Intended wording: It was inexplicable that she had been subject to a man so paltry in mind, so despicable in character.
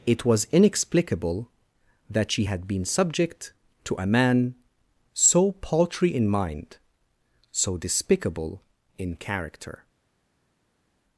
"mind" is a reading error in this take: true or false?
false